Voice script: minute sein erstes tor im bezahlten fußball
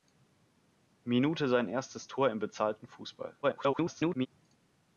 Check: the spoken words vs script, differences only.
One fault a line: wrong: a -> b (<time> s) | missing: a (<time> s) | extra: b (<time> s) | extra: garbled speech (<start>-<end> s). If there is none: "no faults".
extra: garbled speech (3.4-4.3 s)